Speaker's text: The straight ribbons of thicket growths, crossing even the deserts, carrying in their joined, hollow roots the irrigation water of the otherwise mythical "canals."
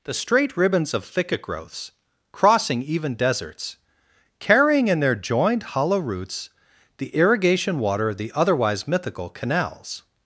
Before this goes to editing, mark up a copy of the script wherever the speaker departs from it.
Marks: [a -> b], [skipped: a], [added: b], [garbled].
The straight ribbons of thicket growths, crossing even [skipped: the] deserts, carrying in their joined, hollow roots the irrigation water of the otherwise mythical "canals."